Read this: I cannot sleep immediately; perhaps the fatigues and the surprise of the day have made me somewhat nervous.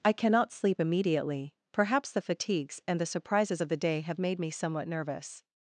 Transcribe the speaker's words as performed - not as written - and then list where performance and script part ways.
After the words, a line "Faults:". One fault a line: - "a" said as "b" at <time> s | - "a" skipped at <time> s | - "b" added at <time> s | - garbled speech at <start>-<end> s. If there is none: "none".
I cannot sleep immediately; perhaps the fatigues and the surprises of the day have made me somewhat nervous.
Faults:
- "surprise" said as "surprises" at 3.0 s